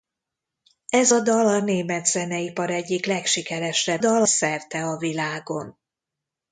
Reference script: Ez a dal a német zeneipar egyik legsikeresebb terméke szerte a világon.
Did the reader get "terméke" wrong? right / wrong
wrong